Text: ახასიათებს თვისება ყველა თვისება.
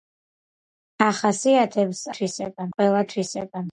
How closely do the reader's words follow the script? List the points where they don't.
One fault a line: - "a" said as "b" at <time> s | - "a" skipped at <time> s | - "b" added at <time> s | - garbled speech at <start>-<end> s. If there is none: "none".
none